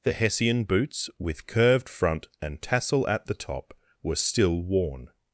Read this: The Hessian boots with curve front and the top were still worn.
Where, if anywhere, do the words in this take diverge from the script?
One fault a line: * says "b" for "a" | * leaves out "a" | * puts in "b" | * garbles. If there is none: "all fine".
* says "curved" for "curve"
* puts in "tassel at"